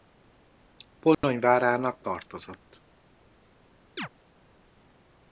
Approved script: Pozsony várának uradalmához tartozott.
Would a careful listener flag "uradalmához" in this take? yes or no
yes